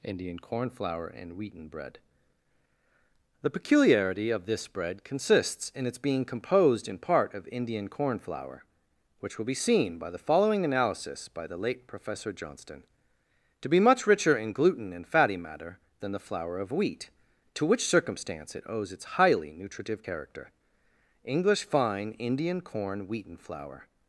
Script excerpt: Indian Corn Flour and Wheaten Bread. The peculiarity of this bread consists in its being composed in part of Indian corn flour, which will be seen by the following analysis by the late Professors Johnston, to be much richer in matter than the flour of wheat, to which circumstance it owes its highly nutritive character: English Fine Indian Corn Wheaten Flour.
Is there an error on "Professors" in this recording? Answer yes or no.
yes